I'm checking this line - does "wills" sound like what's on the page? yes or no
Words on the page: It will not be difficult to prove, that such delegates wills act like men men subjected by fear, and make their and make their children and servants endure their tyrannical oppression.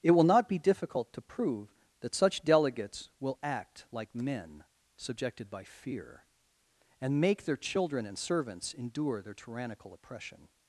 no